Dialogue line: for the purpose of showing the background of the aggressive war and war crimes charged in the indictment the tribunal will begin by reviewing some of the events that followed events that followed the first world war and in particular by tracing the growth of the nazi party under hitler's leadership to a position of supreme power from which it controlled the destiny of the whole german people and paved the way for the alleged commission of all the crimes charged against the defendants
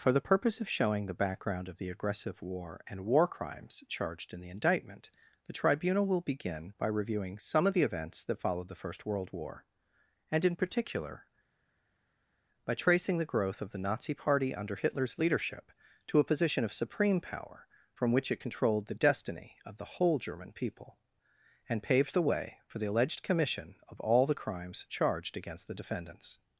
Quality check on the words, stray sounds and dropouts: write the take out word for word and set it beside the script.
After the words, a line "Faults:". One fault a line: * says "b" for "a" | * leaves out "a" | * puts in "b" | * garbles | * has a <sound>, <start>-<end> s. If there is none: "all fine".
for the purpose of showing the background of the aggressive war and war crimes charged in the indictment the tribunal will begin by reviewing some of the events that followed the first world war and in particular by tracing the growth of the nazi party under hitler's leadership to a position of supreme power from which it controlled the destiny of the whole german people and paved the way for the alleged commission of all the crimes charged against the defendants
Faults:
* leaves out "events that followed"